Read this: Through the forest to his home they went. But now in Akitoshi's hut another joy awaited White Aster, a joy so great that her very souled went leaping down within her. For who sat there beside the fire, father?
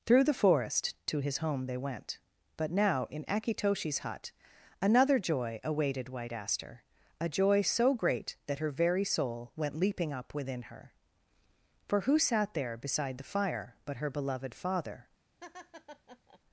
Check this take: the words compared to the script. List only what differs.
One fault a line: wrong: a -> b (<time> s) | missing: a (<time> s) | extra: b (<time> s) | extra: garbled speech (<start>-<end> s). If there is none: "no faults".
wrong: souled -> soul (9.0 s)
wrong: down -> up (10.1 s)
extra: but her beloved (13.8 s)